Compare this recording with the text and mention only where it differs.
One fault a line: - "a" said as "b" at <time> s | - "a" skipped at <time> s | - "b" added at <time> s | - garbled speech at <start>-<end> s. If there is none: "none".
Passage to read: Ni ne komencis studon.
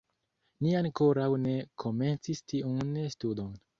- "ankoraŭ" added at 0.8 s
- "tiun" added at 2.5 s